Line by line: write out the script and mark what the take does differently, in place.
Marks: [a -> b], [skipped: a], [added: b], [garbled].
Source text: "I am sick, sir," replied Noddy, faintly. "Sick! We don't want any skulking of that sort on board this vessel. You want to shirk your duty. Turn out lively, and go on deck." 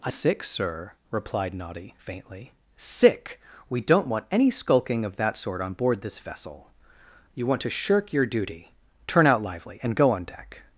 "I [skipped: am] sick, sir," replied Noddy, faintly. "Sick! We don't want any skulking of that sort on board this vessel. You want to shirk your duty. Turn out lively, and go on deck."